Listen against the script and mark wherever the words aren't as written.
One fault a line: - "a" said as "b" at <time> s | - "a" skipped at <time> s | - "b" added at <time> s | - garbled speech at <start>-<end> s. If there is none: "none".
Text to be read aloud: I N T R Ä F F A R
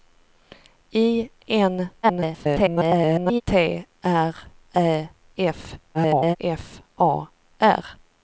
- garbled speech at 2.0-3.4 s
- garbled speech at 5.9-6.4 s